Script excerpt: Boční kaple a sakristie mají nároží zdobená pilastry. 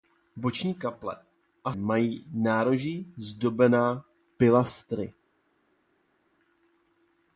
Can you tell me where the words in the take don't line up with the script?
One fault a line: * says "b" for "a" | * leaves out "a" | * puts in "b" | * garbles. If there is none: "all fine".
* leaves out "sakristie"